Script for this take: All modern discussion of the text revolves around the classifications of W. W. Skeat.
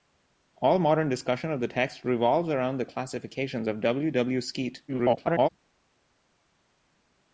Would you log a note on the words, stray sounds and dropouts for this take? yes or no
yes